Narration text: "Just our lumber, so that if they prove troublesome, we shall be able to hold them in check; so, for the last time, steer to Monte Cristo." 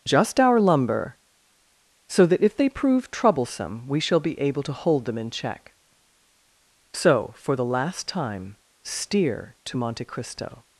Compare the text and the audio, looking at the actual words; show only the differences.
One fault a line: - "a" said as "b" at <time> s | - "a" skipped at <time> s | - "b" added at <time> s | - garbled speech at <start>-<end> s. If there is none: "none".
none